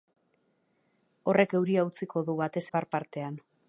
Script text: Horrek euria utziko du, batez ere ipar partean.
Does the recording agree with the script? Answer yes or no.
no